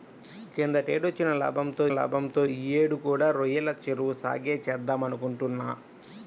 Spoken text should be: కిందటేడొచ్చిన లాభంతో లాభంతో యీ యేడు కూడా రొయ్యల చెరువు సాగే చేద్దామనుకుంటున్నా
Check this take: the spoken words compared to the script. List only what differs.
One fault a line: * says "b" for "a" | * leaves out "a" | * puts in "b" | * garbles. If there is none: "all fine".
all fine